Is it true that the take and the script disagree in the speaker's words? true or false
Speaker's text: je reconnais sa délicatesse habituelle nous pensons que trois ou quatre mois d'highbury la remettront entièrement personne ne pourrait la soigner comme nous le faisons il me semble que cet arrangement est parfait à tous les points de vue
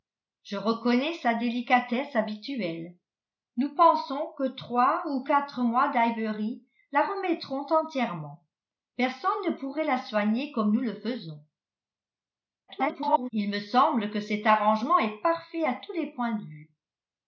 true